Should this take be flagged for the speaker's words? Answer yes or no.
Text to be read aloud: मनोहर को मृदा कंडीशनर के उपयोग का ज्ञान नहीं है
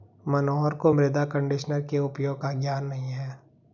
no